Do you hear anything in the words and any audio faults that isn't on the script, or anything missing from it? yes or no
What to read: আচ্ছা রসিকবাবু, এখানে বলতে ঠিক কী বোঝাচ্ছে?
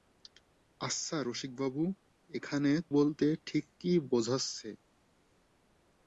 no